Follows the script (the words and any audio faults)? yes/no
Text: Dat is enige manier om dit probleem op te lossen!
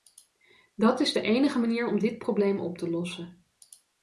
no